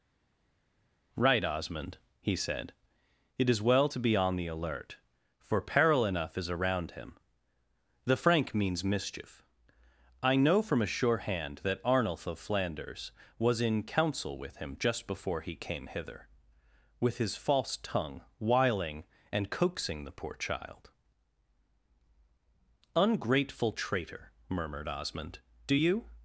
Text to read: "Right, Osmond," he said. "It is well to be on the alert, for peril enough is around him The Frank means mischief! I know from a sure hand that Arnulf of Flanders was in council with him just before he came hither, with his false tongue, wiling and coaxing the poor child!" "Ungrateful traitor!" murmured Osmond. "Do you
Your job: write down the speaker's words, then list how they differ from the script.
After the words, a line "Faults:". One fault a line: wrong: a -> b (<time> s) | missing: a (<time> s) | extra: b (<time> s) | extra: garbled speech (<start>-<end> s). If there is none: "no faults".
"Right, Osmond," he said. "It is well to be on the alert, for peril enough is around him The Frank means mischief! I know from a sure hand that Arnulf of Flanders was in council with him just before he came hither, with his false tongue, wiling and coaxing the poor child!" "Ungrateful traitor!" murmured Osmond. "Do you
Faults:
no faults